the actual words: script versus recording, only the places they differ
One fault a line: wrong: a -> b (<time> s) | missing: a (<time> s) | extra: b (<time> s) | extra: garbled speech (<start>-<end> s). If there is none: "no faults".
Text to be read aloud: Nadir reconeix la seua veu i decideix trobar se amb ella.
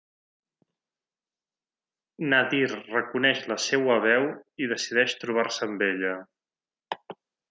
no faults